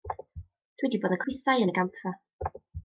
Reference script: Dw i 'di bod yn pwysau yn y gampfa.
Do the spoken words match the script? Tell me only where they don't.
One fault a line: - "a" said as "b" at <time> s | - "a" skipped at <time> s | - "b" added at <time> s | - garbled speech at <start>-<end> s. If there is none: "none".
none